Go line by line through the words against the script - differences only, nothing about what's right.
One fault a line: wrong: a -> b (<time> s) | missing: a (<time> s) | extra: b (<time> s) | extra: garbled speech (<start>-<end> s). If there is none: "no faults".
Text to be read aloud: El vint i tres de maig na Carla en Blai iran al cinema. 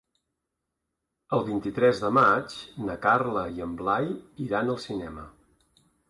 extra: i (3.6 s)